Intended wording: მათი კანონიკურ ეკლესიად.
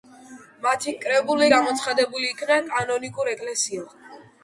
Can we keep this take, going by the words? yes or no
no